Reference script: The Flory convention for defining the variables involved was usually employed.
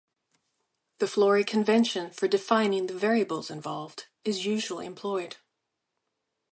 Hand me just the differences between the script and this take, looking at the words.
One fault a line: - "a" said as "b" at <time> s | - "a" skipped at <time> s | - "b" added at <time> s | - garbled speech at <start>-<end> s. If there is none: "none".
- "was" said as "is" at 4.2 s